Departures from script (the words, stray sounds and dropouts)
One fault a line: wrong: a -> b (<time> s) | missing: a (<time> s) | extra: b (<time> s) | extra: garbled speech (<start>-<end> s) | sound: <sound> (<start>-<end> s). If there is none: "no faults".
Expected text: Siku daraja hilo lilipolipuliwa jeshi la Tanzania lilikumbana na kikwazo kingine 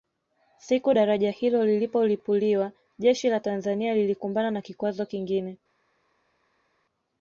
no faults